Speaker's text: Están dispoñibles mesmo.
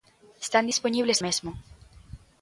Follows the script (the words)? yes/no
yes